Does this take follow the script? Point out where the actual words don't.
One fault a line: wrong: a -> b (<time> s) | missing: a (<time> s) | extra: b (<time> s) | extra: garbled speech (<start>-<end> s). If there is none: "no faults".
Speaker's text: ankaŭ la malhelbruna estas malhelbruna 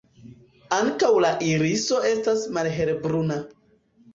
wrong: malhelbruna -> iriso (1.5 s)